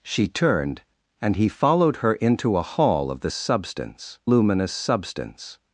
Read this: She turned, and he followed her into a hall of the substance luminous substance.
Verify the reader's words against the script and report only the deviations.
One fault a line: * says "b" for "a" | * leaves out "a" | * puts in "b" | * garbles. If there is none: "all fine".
all fine